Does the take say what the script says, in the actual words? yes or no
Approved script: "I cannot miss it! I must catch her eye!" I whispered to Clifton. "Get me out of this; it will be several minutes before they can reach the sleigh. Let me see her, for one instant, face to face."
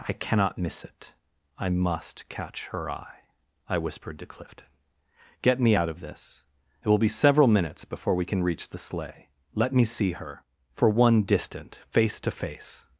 no